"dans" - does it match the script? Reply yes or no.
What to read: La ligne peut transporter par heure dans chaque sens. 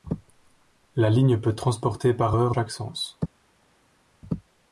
no